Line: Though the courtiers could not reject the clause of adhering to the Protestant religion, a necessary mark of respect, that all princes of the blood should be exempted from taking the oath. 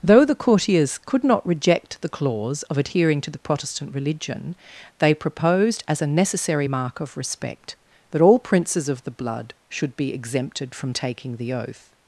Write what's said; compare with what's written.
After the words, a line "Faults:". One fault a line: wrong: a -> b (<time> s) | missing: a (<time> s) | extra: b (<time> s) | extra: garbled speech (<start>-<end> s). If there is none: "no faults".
Though the courtiers could not reject the clause of adhering to the Protestant religion, they proposed, as a necessary mark of respect, that all princes of the blood should be exempted from taking the oath.
Faults:
extra: they proposed as (5.0 s)